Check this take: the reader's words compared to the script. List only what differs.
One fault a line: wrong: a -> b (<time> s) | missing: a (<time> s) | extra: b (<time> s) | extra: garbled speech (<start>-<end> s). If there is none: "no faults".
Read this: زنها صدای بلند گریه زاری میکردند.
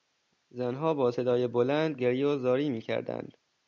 extra: با (0.9 s)
extra: و (2.3 s)